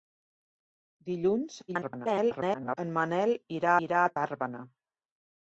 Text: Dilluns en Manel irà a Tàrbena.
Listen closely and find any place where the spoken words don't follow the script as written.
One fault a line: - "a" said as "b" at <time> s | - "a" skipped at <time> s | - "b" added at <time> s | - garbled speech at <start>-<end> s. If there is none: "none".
- garbled speech at 1.7-2.8 s
- "irà" added at 3.9 s